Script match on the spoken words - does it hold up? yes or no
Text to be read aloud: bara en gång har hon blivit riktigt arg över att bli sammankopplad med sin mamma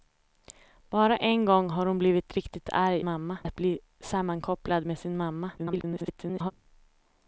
no